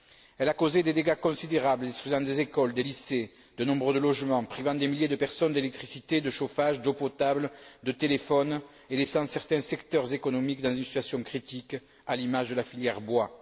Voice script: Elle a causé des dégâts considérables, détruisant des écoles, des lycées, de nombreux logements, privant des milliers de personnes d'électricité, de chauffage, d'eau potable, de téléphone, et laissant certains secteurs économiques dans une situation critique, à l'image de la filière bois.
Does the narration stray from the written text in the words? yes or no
no